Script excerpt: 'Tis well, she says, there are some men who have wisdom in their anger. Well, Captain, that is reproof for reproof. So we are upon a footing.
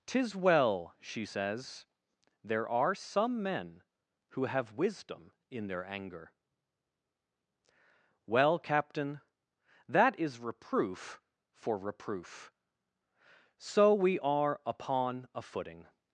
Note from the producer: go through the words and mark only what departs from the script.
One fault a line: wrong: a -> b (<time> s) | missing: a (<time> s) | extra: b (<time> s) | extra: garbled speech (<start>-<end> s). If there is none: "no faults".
no faults